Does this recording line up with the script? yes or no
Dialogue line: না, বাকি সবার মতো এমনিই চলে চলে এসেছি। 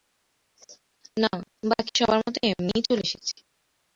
no